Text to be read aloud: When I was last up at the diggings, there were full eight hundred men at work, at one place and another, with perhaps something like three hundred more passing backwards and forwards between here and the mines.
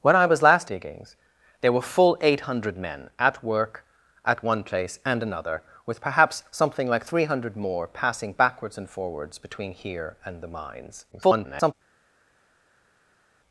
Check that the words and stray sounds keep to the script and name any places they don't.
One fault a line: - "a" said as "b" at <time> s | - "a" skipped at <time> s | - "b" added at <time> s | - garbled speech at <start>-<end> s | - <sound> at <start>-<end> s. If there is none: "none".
- "up at the" skipped at 0.7 s
- garbled speech at 11.1-11.7 s